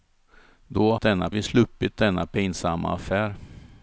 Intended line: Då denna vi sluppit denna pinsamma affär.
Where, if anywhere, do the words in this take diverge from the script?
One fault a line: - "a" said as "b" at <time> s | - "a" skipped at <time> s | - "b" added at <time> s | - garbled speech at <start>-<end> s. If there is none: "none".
none